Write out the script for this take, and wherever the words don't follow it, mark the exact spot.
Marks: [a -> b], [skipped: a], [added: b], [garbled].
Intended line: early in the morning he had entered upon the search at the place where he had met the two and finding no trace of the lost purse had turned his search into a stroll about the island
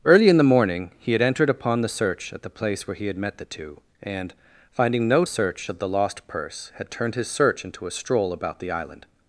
early in the morning he had entered upon the search at the place where he had met the two and finding no [trace -> search] of the lost purse had turned his search into a stroll about the island